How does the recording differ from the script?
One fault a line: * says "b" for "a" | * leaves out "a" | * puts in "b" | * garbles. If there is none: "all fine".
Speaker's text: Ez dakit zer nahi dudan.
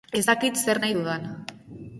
all fine